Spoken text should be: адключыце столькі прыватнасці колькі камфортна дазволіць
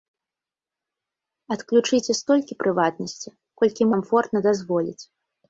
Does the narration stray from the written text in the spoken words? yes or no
no